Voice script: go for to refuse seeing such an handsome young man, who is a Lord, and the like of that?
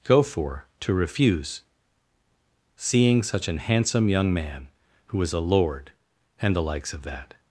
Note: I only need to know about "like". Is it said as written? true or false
false